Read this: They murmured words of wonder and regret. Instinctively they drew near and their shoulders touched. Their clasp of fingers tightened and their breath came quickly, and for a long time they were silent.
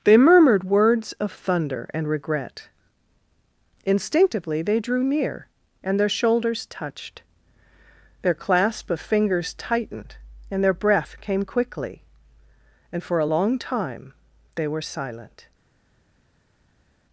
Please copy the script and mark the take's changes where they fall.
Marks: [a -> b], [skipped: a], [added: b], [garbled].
They murmured words of [wonder -> thunder] and regret. Instinctively they drew near and their shoulders touched. Their clasp of fingers tightened and their breath came quickly, and for a long time they were silent.